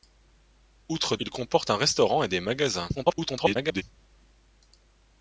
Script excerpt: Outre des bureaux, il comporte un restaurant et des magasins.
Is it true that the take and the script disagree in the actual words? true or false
true